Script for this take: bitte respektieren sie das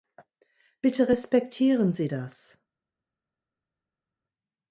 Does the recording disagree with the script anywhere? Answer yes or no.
no